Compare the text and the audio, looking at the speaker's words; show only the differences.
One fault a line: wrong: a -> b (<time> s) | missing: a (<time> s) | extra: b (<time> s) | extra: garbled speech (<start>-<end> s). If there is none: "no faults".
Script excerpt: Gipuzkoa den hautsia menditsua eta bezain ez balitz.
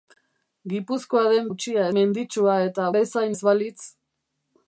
no faults